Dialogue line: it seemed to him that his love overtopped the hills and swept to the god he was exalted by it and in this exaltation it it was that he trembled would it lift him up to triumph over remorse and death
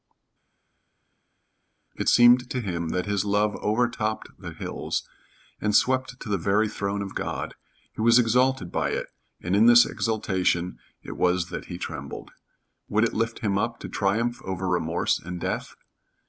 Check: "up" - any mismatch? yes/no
no